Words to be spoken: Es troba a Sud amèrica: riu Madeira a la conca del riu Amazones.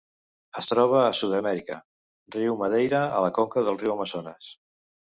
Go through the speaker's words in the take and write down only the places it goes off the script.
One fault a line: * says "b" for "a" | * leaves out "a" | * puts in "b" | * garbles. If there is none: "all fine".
all fine